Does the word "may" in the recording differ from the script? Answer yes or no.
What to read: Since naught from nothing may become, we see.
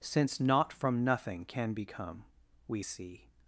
yes